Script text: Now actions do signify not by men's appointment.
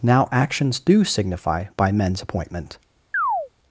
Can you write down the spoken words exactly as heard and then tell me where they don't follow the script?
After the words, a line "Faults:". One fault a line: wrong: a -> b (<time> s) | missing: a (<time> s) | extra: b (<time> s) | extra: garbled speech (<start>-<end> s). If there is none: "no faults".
Now actions do signify by men's appointment.
Faults:
missing: not (1.6 s)